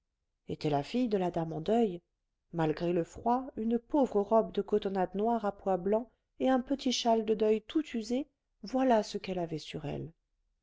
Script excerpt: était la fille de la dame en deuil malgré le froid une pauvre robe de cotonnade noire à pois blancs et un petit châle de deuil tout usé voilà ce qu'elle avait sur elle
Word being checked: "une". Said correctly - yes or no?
yes